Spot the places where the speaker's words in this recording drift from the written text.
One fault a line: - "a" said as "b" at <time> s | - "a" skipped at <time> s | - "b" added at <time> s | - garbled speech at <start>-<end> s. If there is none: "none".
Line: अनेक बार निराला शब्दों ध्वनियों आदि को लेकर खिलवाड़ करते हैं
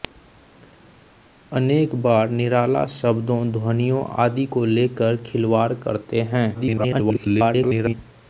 - garbled speech at 6.5-7.9 s